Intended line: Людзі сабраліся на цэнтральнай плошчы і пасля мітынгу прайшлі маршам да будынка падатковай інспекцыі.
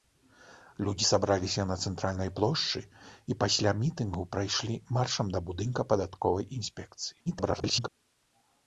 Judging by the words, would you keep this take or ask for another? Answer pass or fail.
fail